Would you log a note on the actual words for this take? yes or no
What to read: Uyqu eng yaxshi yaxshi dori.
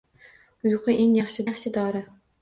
no